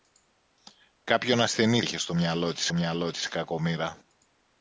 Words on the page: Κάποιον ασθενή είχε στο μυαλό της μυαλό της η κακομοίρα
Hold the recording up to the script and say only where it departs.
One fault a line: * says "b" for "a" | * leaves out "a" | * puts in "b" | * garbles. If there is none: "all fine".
all fine